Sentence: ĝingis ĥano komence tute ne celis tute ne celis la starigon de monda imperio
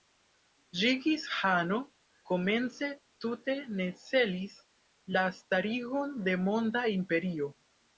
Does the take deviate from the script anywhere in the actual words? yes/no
yes